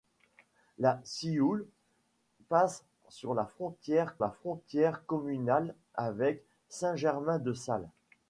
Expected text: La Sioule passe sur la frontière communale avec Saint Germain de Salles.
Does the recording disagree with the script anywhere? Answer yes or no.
yes